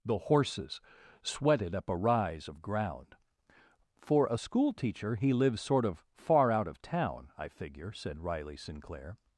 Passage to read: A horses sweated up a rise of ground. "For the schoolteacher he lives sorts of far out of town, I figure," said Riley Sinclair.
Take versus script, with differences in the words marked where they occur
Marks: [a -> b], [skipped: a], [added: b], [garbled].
[A -> The] horses sweated up a rise of ground. "For [the -> a] schoolteacher he lives [sorts -> sort] of far out of town, I figure," said Riley Sinclair.